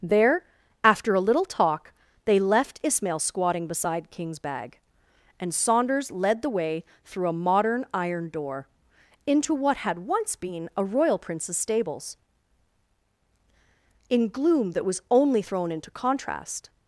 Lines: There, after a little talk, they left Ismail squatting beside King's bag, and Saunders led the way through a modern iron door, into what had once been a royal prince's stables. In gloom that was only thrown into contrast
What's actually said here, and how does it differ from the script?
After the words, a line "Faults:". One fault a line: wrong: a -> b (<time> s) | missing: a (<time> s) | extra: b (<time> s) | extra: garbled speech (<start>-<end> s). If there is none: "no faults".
There, after a little talk, they left Ismail squatting beside King's bag, and Saunders led the way through a modern iron door, into what had once been a royal prince's stables. In gloom that was only thrown into contrast
Faults:
no faults